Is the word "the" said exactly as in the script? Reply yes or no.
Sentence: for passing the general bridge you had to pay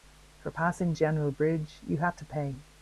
no